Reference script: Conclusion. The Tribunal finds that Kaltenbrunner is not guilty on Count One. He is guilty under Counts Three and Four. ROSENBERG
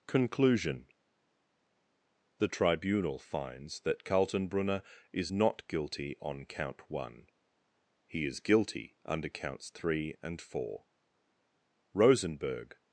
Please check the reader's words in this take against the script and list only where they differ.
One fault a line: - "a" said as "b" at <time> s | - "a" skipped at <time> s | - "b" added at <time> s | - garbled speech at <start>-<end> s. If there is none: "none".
none